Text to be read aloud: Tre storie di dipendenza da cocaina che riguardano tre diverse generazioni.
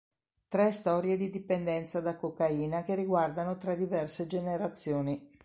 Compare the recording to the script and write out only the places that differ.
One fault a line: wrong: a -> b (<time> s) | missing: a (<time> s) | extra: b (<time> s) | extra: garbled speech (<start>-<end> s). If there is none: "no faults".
no faults